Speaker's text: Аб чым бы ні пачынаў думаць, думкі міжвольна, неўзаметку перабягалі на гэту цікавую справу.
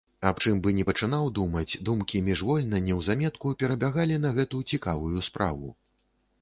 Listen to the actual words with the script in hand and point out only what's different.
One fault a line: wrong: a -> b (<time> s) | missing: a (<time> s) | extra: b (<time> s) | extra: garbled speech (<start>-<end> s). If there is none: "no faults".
no faults